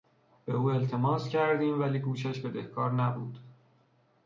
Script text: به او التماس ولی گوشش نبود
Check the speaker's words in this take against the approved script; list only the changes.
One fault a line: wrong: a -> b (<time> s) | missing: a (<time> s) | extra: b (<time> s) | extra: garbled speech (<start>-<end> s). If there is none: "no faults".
extra: کردیم (1.3 s)
extra: بدهکار (2.4 s)